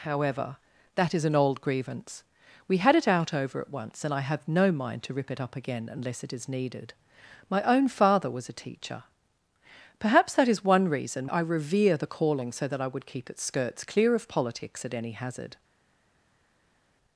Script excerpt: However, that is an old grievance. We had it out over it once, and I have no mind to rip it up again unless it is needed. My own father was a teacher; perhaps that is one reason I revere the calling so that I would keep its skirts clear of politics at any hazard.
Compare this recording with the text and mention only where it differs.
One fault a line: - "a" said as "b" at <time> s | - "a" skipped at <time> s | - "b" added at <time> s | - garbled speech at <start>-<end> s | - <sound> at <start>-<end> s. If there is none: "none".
none